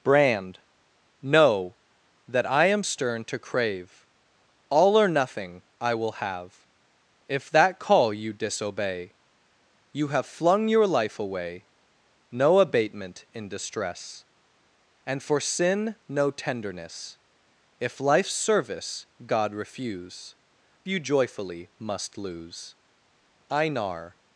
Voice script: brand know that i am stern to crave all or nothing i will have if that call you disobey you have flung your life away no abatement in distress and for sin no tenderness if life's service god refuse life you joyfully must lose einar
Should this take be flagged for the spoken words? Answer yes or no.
yes